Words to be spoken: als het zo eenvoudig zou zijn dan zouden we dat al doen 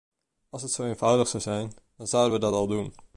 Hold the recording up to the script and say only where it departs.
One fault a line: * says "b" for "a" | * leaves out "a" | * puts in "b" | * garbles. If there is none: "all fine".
all fine